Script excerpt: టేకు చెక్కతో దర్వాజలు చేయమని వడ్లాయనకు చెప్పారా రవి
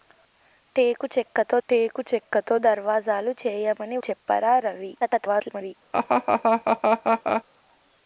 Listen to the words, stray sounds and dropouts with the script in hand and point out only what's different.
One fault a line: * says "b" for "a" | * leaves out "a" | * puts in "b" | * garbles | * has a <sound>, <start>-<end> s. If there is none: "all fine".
* puts in "టేకు చెక్కతో"
* leaves out "వడ్లాయనకు"
* garbles
* has a laugh, 5.9-7.4 s